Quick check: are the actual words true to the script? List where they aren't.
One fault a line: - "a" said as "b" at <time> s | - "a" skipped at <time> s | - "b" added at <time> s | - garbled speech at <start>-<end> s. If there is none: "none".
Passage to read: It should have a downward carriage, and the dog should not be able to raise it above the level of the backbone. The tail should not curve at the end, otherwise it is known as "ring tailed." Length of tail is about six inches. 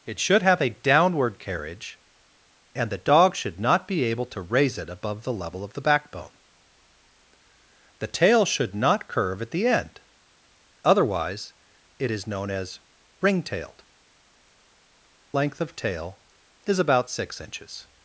none